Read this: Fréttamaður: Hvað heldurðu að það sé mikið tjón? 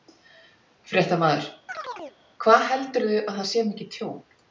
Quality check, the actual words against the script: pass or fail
pass